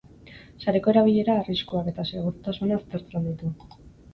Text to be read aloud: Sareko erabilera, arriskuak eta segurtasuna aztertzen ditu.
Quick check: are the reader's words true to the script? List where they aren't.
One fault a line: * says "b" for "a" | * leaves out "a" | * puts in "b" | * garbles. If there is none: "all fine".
all fine